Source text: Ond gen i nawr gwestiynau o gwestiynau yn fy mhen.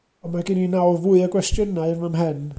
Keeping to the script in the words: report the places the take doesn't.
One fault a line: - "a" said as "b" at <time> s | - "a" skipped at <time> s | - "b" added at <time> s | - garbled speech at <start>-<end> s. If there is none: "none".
- "mae" added at 0.3 s
- "gwestiynau" said as "fwy" at 1.0 s